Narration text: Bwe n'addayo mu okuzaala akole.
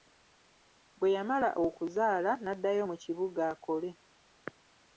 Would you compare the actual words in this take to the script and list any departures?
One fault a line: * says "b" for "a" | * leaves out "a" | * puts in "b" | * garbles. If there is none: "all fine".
* puts in "yamala okuzaala"
* says "kibuga" for "okuzaala"